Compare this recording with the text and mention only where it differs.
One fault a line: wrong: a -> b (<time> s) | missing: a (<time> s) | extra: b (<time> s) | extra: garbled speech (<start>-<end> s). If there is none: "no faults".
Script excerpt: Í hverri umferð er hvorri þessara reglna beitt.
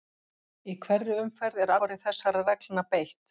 no faults